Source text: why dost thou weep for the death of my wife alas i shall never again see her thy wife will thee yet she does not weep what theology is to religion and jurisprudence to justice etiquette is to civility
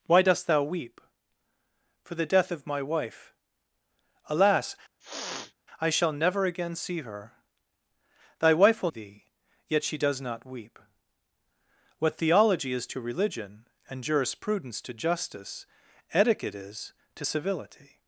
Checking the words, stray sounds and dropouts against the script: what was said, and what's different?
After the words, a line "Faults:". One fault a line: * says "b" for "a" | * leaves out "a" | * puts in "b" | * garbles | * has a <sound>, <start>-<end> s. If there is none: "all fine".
why dost thou weep for the death of my wife alas i shall never again see her thy wife will thee yet she does not weep what theology is to religion and jurisprudence to justice etiquette is to civility
Faults:
* has a sniff, 5.0-5.5 s